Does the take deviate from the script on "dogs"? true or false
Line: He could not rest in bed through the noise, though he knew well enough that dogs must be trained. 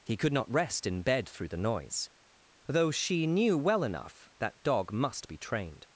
true